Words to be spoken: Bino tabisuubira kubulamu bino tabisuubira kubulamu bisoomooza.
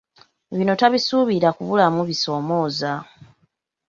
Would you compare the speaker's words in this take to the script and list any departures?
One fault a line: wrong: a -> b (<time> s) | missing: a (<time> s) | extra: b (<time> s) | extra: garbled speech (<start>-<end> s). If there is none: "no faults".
missing: bino tabisuubira kubulamu (2.0 s)